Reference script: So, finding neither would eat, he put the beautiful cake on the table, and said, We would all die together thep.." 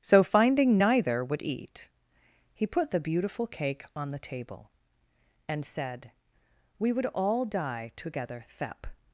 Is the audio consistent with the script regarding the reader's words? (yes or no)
yes